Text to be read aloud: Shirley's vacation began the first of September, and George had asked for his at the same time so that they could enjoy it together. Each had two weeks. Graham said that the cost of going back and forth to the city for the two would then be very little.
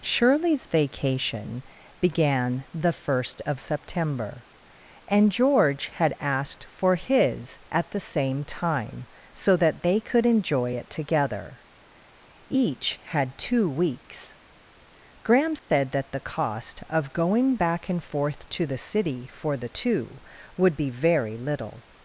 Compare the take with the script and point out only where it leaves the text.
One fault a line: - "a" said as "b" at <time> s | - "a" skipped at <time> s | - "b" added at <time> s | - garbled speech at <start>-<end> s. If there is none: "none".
- "then" skipped at 20.8 s